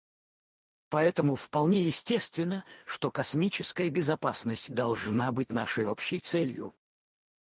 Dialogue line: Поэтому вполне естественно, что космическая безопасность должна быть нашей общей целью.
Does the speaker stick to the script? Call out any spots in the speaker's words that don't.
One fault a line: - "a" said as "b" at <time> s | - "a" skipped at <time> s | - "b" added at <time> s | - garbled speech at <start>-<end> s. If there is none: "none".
none